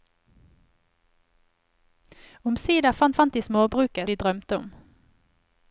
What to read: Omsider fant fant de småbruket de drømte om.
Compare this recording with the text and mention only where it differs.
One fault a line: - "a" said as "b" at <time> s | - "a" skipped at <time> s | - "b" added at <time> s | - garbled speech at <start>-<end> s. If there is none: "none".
none